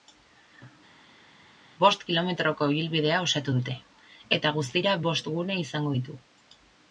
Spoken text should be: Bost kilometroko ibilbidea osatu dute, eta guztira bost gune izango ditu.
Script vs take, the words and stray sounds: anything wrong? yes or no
no